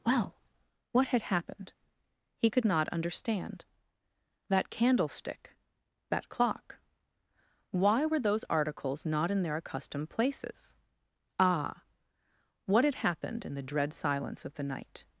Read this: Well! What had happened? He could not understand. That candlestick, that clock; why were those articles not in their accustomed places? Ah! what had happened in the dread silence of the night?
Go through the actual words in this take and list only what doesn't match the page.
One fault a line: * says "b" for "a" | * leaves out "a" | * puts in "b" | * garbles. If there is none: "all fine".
all fine